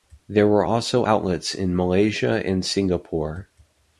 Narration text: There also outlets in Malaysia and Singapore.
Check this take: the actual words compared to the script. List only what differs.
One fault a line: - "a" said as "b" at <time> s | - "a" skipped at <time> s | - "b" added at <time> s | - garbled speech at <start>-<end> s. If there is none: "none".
- "were" added at 0.5 s